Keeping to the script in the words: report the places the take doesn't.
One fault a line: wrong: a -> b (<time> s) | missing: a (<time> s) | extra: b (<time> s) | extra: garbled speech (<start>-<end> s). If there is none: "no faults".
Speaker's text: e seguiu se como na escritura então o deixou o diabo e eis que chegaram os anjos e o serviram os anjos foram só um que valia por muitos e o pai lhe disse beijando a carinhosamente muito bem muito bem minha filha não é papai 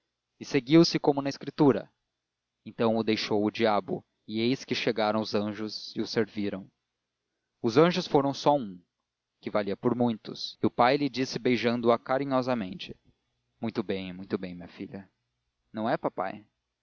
no faults